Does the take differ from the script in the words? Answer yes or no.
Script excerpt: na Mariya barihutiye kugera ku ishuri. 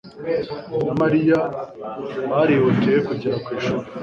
no